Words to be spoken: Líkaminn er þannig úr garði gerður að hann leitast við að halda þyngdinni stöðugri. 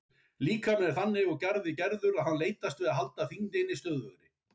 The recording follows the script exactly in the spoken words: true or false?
true